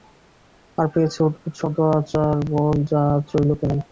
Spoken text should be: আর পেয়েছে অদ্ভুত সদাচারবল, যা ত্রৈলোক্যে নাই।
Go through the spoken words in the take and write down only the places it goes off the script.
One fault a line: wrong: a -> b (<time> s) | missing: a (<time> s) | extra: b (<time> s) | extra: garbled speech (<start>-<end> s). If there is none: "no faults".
no faults